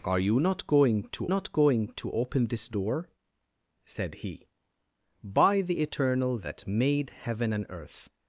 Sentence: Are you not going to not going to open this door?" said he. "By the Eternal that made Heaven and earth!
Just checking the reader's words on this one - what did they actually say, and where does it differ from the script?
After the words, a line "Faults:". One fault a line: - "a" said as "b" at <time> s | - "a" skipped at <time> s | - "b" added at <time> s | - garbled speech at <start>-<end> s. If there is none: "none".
Are you not going to not going to open this door?" said he. "By the Eternal that made Heaven and earth!
Faults:
none